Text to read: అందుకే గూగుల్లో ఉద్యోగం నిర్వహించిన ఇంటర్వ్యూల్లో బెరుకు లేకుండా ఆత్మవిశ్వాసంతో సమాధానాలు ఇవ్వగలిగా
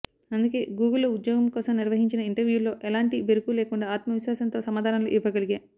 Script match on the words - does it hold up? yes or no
no